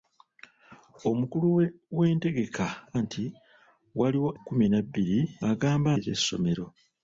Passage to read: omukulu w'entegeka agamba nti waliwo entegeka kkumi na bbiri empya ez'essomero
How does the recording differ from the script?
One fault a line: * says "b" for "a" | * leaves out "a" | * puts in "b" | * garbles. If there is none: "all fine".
* leaves out "agamba"
* leaves out "entegeka"
* says "agamba" for "empya"